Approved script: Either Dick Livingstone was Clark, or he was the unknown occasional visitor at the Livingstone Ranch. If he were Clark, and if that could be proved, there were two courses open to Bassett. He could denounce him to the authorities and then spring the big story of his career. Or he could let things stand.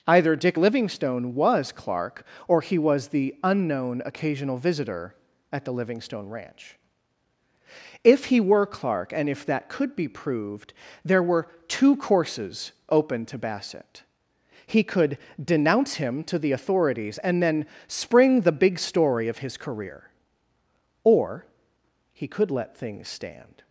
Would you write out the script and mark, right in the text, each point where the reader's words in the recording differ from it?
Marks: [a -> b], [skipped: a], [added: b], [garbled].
Either Dick Livingstone was Clark, or he was the unknown occasional visitor at the Livingstone Ranch. If he were Clark, and if that could be proved, there were two courses open to Bassett. He could denounce him to the authorities and then spring the big story of his career. Or he could let things stand.